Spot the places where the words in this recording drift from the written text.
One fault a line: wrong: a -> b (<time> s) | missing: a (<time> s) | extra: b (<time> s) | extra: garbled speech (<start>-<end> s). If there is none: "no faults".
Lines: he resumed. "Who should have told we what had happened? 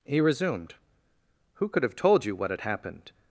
wrong: should -> could (1.7 s)
wrong: we -> you (2.2 s)